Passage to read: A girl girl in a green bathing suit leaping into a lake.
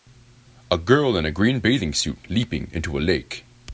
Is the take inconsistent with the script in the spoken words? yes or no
yes